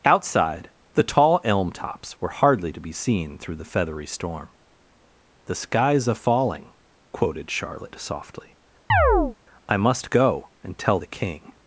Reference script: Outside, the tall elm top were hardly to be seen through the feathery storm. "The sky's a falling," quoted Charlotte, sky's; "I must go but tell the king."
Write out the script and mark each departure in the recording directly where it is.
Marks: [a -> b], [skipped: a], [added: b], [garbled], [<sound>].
Outside, the tall elm [top -> tops] were hardly to be seen through the feathery storm. "The sky's a falling," quoted Charlotte, [sky's; -> softly] [chirp] "I must go [but -> and] tell the king."